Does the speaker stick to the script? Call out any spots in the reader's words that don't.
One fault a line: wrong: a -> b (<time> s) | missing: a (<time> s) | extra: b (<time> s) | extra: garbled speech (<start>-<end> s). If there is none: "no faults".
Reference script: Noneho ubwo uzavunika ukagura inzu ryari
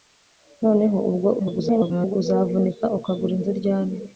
extra: garbled speech (1.4-2.2 s)